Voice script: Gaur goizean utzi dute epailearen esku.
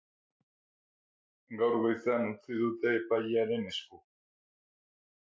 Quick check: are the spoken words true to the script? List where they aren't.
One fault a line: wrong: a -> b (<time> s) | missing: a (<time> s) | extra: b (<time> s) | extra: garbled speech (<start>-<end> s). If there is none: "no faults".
no faults